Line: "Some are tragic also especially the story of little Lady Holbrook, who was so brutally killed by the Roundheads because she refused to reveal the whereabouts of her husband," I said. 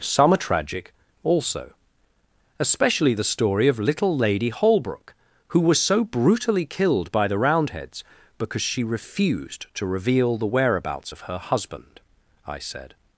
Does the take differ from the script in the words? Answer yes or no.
no